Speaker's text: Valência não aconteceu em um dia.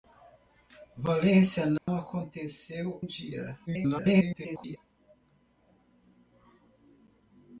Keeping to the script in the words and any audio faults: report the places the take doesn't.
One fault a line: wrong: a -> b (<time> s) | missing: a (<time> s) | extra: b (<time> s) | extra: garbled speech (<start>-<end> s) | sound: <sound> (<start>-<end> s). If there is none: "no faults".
sound: dropout (1.8-1.9 s)
missing: em (3.0 s)
extra: garbled speech (3.7-4.8 s)